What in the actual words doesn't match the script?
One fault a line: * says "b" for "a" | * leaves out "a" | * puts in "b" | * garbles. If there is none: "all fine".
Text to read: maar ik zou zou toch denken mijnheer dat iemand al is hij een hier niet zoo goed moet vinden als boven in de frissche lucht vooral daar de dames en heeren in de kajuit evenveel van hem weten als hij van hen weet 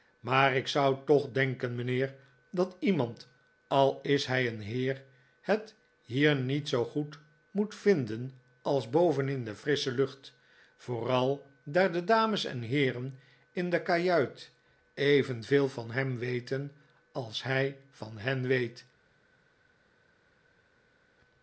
* leaves out "zou"
* puts in "heer het"